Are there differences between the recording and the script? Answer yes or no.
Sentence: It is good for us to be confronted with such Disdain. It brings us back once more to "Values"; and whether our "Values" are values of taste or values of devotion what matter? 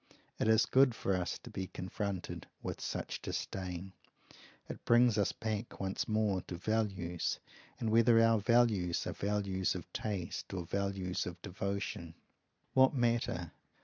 no